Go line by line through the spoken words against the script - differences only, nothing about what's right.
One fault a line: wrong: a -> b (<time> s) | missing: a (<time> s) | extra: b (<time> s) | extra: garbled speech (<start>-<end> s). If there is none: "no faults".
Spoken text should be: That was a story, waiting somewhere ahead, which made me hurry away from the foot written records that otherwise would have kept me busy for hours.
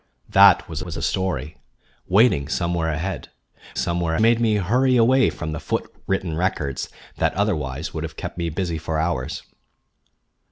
extra: was (0.8 s)
wrong: which -> somewhere (3.7 s)